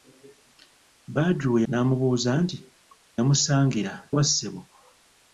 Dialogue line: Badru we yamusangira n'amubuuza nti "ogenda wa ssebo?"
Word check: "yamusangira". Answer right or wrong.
wrong